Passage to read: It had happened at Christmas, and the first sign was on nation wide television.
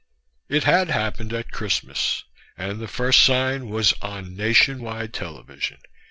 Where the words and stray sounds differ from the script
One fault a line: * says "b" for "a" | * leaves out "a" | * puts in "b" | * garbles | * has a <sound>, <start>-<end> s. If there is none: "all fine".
all fine